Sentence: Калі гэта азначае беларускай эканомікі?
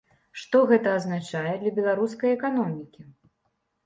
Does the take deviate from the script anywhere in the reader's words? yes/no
yes